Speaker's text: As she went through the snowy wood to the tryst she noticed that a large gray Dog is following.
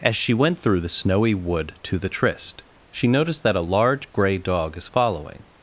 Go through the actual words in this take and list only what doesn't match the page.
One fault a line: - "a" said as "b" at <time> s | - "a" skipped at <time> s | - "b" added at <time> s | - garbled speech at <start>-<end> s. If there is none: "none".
none